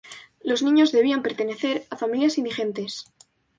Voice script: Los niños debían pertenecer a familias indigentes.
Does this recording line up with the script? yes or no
yes